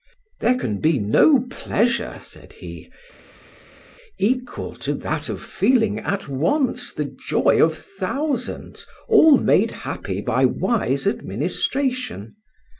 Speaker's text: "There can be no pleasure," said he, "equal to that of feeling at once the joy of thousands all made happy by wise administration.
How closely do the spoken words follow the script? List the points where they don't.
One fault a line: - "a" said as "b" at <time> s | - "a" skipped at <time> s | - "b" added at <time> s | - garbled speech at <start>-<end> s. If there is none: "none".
none